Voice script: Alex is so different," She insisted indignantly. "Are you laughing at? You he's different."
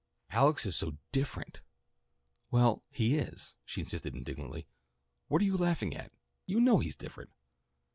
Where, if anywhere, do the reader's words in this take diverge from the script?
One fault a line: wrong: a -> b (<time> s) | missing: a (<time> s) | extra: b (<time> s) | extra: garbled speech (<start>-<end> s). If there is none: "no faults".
extra: Well he is (2.5 s)
extra: What (5.3 s)
extra: know (6.6 s)